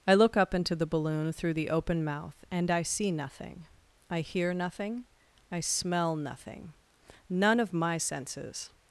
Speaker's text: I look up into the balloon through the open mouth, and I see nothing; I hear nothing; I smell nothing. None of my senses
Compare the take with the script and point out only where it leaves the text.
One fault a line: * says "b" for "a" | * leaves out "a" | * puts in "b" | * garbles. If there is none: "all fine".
all fine